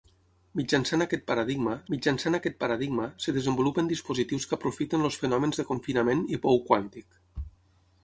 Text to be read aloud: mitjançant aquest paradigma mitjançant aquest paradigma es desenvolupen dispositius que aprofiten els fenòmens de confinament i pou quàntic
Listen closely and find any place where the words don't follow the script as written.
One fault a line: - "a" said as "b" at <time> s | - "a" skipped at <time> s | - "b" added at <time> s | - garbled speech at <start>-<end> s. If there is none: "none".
none